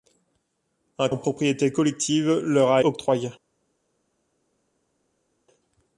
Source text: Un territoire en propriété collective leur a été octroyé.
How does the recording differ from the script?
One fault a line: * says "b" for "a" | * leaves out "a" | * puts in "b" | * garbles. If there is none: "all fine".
* leaves out "territoire"
* leaves out "été"